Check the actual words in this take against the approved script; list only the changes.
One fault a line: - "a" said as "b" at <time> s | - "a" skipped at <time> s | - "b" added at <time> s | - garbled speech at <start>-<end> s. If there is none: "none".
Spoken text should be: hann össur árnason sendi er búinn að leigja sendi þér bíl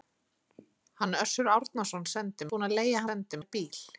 none